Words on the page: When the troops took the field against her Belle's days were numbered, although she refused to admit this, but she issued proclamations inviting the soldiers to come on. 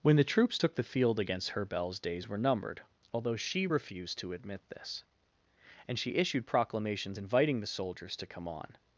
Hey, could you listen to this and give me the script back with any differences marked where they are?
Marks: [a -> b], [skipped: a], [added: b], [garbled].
When the troops took the field against her Belle's days were numbered, although she refused to admit this, [but -> and] she issued proclamations inviting the soldiers to come on.